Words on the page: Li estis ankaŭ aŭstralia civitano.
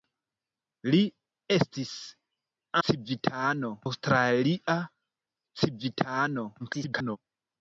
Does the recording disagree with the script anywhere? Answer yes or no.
yes